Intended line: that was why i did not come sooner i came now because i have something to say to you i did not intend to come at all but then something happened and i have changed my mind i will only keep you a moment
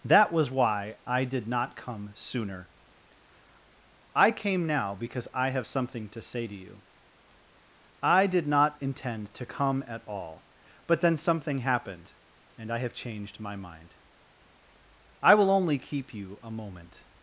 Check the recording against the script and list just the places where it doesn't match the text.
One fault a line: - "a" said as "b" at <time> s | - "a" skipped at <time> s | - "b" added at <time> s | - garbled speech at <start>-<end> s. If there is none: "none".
none